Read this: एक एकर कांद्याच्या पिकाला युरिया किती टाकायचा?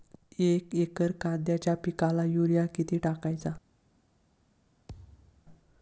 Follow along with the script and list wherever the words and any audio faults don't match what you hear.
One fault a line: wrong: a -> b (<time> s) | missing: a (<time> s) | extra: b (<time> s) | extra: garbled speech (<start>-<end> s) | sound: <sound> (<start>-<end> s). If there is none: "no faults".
sound: thud (4.9-5.5 s)